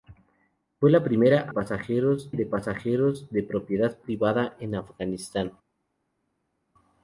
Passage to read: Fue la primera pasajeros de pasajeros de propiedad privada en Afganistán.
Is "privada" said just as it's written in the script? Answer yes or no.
yes